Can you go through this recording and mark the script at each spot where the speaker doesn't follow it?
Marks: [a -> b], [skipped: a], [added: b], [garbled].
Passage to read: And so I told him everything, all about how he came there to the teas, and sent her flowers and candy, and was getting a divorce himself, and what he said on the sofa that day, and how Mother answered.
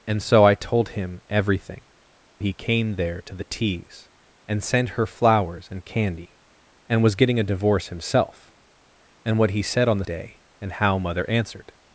And so I told him everything, [skipped: all about how] he came there to the teas, and sent her flowers and candy, and was getting a divorce himself, and what he said on the [skipped: sofa that] day, and how Mother answered.